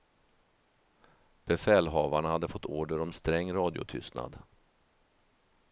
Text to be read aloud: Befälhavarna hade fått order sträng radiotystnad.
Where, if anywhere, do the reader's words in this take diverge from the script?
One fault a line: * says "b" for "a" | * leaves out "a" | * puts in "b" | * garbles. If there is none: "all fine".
* puts in "om"